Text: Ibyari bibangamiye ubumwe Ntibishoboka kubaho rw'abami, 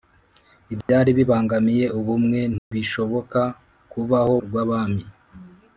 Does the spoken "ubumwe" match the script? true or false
true